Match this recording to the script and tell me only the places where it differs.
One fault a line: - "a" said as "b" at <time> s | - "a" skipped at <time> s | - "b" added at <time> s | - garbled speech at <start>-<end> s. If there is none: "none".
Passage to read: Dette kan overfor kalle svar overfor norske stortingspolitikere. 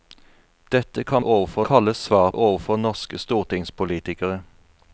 none